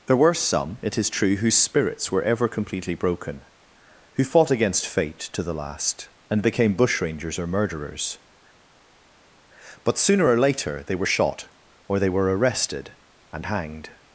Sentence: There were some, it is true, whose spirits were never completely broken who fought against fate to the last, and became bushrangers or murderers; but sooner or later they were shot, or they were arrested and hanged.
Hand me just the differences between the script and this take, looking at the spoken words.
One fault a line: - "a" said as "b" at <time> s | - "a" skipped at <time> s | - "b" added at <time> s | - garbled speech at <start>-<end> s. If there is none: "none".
- "never" said as "ever" at 2.2 s